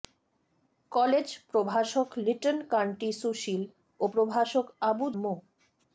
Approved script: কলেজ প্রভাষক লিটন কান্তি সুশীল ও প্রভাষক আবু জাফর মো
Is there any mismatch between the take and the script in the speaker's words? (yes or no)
yes